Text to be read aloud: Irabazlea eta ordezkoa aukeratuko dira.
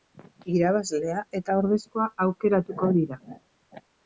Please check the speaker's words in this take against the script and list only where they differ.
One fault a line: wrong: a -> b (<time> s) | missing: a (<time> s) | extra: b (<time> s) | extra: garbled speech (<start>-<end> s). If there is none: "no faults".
no faults